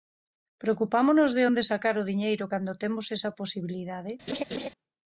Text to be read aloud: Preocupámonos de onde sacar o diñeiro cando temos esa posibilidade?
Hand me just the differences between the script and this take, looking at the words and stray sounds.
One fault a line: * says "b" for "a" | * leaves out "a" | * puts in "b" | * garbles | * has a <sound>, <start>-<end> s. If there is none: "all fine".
* has a laugh, 4.3-4.7 s